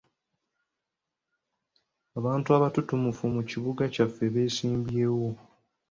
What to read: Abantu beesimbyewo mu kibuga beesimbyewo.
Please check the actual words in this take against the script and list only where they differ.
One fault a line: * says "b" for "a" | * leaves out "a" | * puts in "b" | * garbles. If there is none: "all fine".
* says "abatutumufu" for "beesimbyewo"
* puts in "kyaffe"